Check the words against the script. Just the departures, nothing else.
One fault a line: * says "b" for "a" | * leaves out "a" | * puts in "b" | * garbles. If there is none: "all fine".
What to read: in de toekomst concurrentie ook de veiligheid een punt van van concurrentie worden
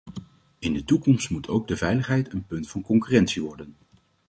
* says "moet" for "concurrentie"
* leaves out "van"